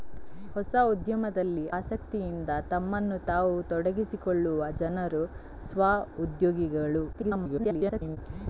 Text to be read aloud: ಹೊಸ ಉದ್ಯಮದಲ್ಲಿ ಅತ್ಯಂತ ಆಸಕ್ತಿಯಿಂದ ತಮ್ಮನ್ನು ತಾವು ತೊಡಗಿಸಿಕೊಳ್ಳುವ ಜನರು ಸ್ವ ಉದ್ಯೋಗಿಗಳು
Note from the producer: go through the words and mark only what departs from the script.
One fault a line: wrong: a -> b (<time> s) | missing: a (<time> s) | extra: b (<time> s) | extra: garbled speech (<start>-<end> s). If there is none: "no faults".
missing: ಅತ್ಯಂತ (1.6 s)
extra: garbled speech (7.1-8.2 s)